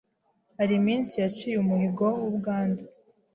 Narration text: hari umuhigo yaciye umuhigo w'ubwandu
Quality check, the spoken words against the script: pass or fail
fail